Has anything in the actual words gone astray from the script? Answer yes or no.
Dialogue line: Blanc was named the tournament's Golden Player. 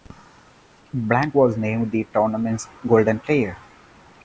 no